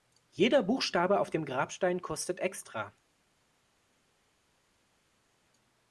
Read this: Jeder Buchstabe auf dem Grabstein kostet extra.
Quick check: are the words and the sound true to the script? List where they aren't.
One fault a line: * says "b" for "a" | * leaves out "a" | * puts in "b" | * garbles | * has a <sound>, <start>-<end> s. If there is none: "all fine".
all fine